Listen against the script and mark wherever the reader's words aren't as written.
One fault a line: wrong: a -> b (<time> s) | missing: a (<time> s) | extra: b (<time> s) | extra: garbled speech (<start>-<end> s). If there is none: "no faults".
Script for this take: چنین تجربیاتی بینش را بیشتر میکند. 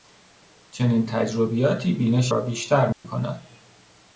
no faults